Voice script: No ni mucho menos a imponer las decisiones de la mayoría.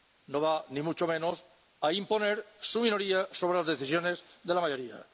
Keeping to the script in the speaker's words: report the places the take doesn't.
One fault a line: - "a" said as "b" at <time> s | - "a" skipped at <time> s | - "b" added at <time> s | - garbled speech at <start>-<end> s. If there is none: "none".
- "va" added at 0.4 s
- "su minoría sobre" added at 2.6 s